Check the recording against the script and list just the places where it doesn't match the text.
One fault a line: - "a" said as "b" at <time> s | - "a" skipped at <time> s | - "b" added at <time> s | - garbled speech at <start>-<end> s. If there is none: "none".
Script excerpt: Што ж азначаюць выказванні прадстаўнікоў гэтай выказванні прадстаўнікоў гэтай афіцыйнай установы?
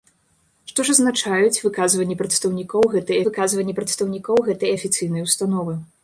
none